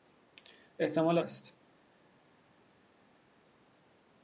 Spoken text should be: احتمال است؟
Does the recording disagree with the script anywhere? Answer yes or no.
no